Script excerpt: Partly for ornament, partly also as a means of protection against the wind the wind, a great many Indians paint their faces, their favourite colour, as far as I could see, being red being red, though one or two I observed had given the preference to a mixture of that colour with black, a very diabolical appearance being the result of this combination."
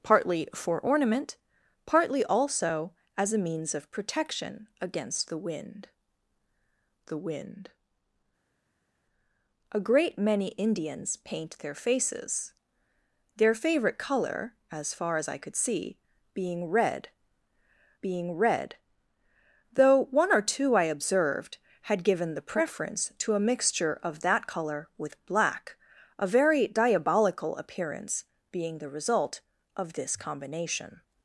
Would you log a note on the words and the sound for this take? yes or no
no